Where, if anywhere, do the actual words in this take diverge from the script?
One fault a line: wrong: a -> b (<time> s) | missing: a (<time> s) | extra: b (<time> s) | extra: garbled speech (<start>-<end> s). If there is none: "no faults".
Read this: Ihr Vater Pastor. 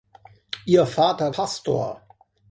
no faults